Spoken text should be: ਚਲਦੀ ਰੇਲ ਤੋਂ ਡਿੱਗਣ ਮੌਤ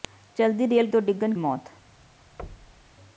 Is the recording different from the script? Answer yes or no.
no